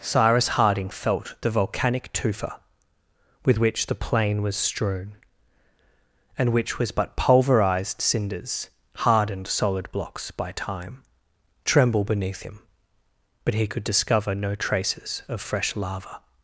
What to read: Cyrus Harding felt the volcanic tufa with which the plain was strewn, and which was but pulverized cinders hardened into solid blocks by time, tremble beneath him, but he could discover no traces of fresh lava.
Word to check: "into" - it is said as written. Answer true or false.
false